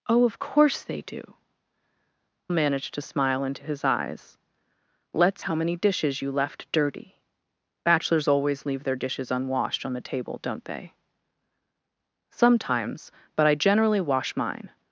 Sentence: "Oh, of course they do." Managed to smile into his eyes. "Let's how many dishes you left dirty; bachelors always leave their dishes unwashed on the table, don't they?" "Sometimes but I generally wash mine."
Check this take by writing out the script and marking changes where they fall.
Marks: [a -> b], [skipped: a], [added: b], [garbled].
"Oh, of course they do." Managed to smile into his eyes. "Let's how many dishes you left dirty; bachelors always leave their dishes unwashed on the table, don't they?" "Sometimes but I generally wash mine."